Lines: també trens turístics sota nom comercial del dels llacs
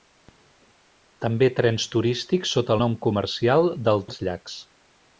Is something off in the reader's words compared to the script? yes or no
no